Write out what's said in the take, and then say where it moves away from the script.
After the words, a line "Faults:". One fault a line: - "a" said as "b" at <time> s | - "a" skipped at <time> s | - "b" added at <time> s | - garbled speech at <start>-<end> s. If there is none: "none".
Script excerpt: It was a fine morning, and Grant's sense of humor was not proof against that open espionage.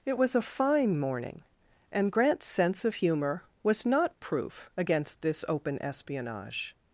It was a fine morning, and Grant's sense of humor was not proof against this open espionage.
Faults:
- "that" said as "this" at 5.2 s